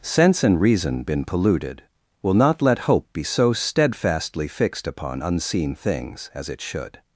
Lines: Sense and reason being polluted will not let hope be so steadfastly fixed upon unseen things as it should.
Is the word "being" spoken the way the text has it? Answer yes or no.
no